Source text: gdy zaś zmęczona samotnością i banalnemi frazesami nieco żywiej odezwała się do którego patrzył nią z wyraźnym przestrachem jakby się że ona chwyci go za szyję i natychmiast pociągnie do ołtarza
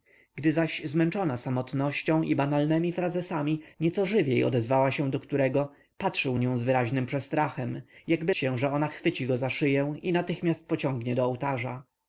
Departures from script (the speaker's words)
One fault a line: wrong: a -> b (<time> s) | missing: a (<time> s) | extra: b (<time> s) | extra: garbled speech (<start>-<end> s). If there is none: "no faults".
no faults